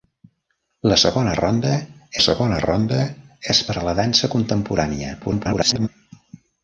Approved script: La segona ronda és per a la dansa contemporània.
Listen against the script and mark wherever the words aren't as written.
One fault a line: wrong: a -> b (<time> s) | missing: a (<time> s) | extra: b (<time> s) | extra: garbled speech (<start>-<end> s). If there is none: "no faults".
extra: segona ronda (2.2 s)
extra: garbled speech (5.2-5.9 s)